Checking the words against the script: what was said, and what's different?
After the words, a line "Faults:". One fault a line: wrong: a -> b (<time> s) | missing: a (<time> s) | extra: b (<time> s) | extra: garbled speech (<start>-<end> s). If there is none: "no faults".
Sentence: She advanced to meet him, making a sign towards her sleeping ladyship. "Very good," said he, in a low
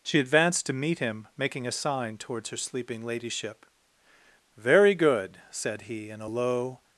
She advanced to meet him, making a sign towards her sleeping ladyship. "Very good," said he, in a low
Faults:
no faults